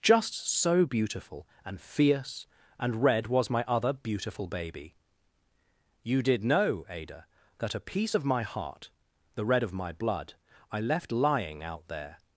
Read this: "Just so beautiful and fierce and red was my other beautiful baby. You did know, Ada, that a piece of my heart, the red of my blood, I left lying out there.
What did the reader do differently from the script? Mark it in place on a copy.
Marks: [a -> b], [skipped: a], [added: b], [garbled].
"Just so beautiful and fierce and red was my other beautiful baby. You did know, Ada, that a piece of my heart, the red of my blood, I left lying out there.